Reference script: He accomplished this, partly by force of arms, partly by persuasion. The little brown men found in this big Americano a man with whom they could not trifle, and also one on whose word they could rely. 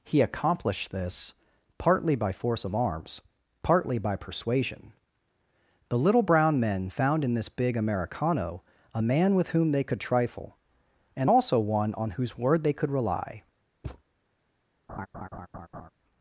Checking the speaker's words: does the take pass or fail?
fail